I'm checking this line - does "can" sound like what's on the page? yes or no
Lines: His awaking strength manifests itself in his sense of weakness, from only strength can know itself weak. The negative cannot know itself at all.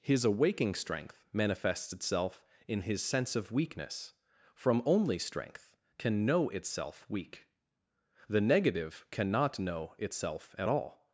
yes